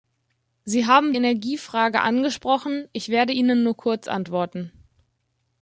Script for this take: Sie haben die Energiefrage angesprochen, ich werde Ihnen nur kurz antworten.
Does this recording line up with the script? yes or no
no